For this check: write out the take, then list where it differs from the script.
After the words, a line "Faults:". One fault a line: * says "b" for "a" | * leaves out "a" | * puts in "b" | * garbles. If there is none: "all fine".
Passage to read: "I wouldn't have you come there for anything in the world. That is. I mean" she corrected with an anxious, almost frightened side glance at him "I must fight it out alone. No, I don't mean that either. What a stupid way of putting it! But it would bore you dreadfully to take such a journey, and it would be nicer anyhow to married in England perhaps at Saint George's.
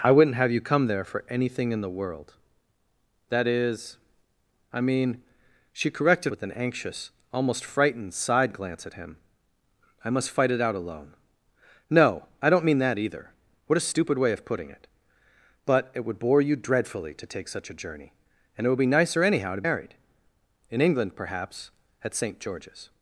"I wouldn't have you come there for anything in the world. That is. I mean" she corrected with an anxious, almost frightened side glance at him "I must fight it out alone. No, I don't mean that either. What a stupid way of putting it! But it would bore you dreadfully to take such a journey, and it would be nicer anyhow to married in England perhaps at Saint George's.
Faults:
all fine